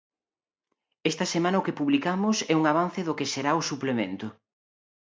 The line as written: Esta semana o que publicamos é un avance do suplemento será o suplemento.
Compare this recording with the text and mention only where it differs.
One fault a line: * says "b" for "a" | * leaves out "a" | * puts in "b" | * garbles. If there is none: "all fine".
* says "que" for "suplemento"